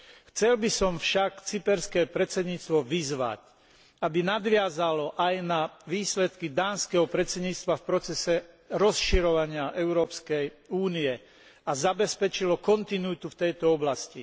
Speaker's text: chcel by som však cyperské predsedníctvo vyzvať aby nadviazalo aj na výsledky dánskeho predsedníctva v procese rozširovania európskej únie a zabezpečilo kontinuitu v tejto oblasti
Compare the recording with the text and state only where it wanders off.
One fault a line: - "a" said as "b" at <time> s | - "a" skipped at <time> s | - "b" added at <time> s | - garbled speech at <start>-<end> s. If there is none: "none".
none